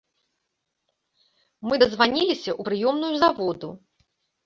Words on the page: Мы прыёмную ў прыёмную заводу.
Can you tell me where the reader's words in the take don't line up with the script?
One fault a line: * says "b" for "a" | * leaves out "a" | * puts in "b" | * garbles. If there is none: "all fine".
* says "дазваніліся" for "прыёмную"